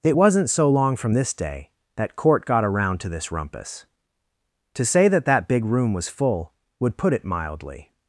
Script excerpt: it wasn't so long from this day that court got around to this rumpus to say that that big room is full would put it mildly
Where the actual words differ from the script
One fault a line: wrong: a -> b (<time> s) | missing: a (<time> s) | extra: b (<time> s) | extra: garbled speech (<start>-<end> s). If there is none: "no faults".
wrong: is -> was (5.9 s)